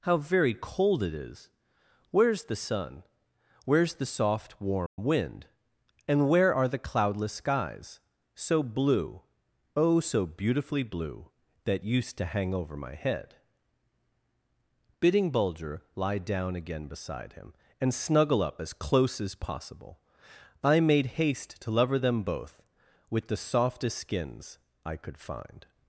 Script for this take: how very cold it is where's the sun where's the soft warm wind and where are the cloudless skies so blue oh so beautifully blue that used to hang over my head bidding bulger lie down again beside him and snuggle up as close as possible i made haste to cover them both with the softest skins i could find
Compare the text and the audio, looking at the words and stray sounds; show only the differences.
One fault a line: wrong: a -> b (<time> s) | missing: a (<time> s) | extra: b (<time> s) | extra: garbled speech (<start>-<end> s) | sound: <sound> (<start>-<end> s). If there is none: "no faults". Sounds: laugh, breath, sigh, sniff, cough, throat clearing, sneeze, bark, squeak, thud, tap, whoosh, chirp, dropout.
sound: dropout (4.9-5.0 s)
wrong: cover -> lover (21.7 s)